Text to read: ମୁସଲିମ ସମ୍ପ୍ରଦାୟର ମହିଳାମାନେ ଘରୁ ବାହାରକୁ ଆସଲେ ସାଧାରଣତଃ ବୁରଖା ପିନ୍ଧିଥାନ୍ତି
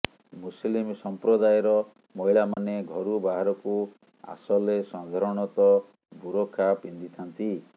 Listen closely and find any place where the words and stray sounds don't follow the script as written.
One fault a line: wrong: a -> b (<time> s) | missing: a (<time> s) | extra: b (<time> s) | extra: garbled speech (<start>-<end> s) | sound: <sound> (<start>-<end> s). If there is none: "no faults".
sound: dropout (2.5-2.6 s)